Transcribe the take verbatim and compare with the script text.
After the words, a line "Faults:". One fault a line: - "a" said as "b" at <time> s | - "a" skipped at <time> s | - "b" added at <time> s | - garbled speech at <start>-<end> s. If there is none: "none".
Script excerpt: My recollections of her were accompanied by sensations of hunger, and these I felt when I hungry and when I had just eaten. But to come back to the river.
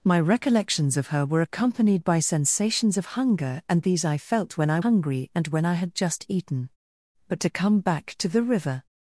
My recollections of her were accompanied by sensations of hunger, and these I felt when I hungry and when I had just eaten. But to come back to the river.
Faults:
none